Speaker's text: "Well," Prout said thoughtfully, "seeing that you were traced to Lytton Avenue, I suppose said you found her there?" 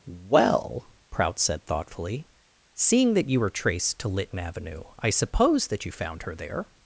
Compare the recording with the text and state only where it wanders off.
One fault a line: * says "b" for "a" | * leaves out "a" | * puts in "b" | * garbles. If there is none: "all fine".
* says "that" for "said"